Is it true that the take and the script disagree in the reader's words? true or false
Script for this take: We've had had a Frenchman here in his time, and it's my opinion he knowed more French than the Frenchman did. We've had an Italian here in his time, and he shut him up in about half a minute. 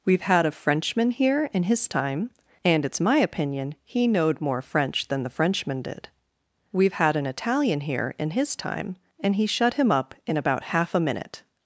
true